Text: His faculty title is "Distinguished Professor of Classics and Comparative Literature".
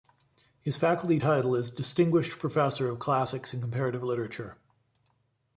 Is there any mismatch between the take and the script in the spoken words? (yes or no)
no